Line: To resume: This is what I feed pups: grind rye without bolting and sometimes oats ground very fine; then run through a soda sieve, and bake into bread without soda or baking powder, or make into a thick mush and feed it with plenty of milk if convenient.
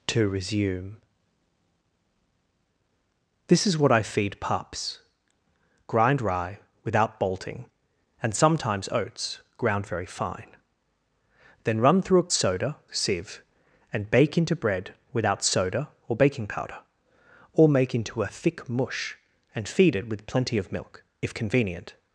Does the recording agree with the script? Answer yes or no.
yes